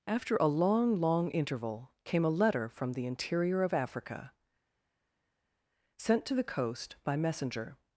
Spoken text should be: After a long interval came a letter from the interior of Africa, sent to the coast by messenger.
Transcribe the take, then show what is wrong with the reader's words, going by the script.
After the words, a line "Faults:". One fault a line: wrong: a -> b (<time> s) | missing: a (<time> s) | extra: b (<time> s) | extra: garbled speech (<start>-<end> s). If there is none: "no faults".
After a long long interval came a letter from the interior of Africa, sent to the coast by messenger.
Faults:
extra: long (1.0 s)